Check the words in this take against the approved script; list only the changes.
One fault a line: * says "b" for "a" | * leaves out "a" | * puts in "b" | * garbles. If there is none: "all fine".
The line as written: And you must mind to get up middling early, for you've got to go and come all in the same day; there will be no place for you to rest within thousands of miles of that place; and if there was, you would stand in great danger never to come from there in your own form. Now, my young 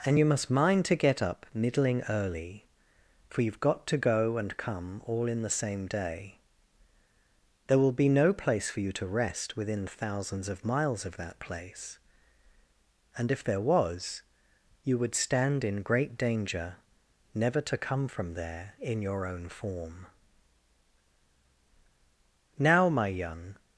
all fine